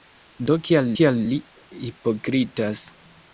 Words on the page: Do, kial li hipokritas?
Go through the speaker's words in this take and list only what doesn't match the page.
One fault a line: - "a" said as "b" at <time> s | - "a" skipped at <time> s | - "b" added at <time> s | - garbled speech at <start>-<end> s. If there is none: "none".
- "kial" added at 1.0 s